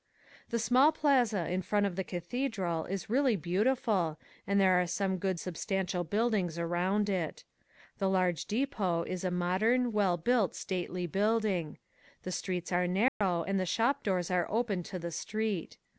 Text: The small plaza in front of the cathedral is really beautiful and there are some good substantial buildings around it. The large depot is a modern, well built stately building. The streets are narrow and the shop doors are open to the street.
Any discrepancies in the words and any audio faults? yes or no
yes